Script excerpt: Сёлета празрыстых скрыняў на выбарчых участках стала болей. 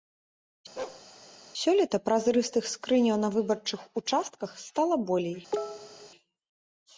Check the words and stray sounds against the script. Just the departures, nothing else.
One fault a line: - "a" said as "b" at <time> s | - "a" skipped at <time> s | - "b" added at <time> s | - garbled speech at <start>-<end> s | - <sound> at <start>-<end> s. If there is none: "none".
- bark at 0.8-1.0 s
- cough at 5.5-6.1 s